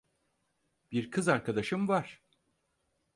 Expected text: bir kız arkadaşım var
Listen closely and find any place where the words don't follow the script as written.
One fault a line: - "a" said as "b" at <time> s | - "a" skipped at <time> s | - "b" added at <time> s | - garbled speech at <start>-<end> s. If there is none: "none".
none